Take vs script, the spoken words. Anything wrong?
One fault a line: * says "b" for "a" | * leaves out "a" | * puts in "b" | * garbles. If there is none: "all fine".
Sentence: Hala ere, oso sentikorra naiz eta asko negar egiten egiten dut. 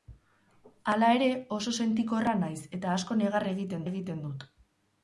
all fine